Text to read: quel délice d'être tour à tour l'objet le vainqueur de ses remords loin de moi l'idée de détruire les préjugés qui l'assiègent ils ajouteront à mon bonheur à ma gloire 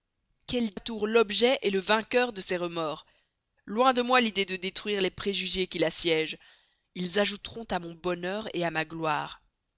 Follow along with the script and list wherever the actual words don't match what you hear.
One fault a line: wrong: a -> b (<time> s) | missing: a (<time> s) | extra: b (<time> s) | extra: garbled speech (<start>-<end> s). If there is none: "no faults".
missing: délice d'être tour (0.7 s)